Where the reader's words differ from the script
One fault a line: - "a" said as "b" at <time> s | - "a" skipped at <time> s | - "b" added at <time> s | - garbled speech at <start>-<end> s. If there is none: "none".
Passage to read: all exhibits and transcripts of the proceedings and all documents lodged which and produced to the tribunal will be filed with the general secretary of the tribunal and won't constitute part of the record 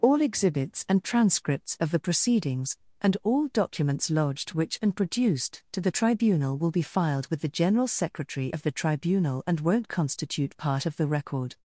none